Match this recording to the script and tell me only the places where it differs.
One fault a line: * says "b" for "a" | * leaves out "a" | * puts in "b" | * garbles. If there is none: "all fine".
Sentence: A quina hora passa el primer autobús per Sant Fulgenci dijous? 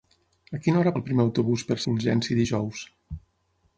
* leaves out "passa"
* leaves out "Sant"